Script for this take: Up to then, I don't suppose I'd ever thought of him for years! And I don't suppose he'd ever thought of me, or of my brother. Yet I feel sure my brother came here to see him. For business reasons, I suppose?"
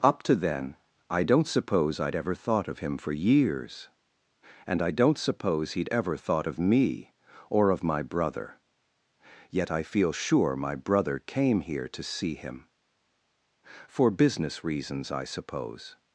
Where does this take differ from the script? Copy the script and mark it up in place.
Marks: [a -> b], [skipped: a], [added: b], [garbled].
Up to then, I don't suppose I'd ever thought of him for years! And I don't suppose he'd ever thought of me, or of my brother. Yet I feel sure my brother came here to see him. For business reasons, I suppose?"